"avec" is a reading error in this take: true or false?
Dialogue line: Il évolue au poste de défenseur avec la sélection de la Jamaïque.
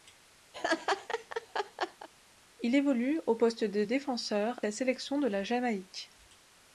true